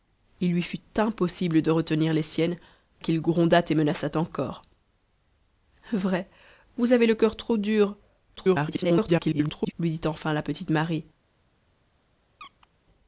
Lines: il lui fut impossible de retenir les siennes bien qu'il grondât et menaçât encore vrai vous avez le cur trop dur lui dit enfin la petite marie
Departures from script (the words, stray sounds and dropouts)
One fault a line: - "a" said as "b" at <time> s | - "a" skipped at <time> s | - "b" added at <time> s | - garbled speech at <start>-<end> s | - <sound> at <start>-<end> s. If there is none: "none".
- "bien" skipped at 2.6 s
- garbled speech at 8.4-9.7 s
- squeak at 12.4-12.7 s